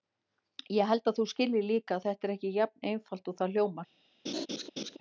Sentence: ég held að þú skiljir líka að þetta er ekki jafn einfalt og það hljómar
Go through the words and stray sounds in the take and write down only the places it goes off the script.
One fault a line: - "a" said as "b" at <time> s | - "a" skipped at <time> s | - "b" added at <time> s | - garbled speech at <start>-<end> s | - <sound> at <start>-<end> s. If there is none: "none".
- laugh at 4.3-5.0 s